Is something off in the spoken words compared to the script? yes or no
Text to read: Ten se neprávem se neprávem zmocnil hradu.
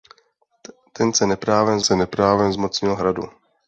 no